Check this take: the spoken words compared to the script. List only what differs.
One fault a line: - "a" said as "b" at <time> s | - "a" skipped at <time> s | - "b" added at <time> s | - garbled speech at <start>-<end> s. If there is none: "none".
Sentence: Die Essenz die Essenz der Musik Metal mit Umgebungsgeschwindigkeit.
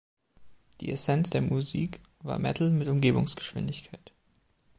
- "die Essenz" skipped at 1.3 s
- "war" added at 2.2 s